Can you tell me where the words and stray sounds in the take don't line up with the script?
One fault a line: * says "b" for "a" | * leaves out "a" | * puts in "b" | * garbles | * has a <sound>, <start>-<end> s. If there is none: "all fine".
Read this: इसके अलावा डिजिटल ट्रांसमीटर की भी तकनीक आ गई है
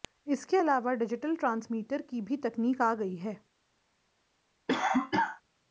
* has a cough, 4.7-5.4 s